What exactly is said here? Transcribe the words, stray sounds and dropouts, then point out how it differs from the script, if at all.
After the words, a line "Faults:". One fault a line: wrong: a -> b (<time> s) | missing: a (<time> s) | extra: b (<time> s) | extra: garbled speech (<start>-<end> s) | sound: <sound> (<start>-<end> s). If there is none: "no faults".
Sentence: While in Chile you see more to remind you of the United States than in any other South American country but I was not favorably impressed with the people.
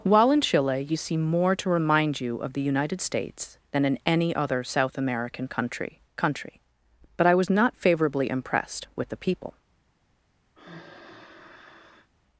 While in Chile you see more to remind you of the United States than in any other South American country country but I was not favorably impressed with the people.
Faults:
extra: country (6.2 s)
sound: sigh (10.5-12.1 s)